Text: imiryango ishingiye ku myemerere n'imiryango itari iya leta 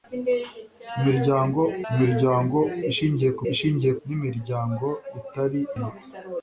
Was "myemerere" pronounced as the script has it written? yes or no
no